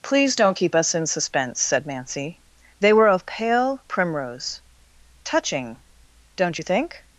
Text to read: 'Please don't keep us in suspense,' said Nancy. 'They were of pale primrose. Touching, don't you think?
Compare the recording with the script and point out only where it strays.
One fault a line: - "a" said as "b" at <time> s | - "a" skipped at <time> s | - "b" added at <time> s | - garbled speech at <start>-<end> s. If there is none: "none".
none